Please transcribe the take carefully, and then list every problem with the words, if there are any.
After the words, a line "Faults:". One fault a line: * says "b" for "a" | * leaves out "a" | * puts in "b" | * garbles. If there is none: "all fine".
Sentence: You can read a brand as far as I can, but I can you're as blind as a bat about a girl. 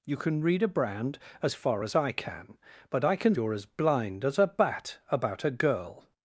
You can read a brand as far as I can, but I can you're as blind as a bat about a girl.
Faults:
all fine